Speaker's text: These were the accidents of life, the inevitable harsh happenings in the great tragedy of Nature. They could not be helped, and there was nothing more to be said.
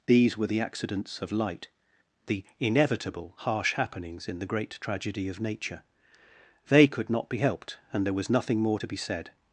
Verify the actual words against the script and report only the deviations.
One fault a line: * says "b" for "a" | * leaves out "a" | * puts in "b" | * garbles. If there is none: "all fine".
* says "light" for "life"